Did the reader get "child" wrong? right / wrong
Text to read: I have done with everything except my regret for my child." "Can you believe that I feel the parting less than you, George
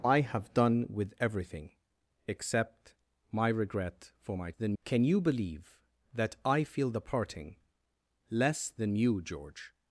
wrong